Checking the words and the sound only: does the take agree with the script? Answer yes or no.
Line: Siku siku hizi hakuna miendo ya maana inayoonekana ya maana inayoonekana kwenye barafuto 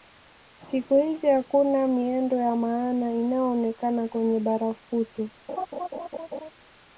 no